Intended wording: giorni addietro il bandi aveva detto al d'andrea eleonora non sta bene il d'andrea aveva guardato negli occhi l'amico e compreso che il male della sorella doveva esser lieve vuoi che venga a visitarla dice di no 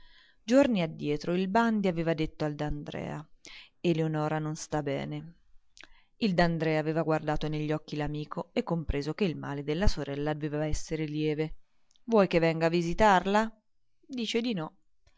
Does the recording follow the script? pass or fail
pass